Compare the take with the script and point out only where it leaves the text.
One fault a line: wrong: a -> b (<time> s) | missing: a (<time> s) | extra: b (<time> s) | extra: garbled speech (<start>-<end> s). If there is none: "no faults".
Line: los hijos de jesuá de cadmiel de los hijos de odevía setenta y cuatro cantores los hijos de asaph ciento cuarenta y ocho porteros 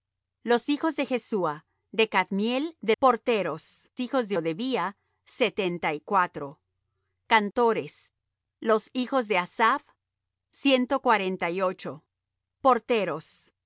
wrong: los -> porteros (3.0 s)